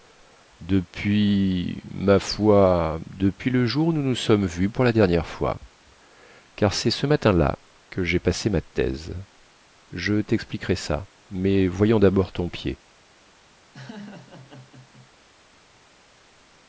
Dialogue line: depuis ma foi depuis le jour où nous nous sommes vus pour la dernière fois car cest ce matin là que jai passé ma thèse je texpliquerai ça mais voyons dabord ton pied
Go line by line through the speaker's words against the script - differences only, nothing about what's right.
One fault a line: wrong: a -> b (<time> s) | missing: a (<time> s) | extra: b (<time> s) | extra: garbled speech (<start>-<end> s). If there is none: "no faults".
no faults